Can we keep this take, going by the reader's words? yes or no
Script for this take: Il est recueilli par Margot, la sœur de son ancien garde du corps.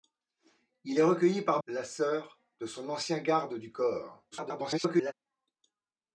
no